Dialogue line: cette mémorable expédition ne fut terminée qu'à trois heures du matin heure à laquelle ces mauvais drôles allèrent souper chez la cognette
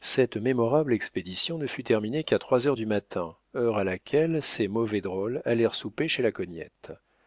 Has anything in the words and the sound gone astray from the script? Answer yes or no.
no